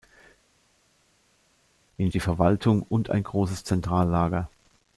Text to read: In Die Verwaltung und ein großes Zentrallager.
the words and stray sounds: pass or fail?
pass